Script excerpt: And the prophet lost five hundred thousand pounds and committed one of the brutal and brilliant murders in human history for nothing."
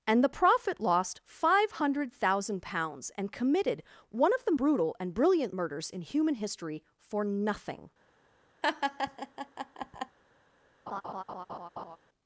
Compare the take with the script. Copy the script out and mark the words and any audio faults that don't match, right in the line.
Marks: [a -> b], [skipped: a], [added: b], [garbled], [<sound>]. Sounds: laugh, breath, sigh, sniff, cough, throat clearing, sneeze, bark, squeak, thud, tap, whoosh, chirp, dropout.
And the prophet lost five hundred thousand pounds and committed one of the brutal and brilliant murders in human history for nothing." [laugh] [laugh]